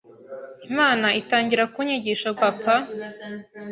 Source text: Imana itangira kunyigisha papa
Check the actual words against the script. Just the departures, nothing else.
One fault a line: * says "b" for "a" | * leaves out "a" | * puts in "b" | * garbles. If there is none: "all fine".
all fine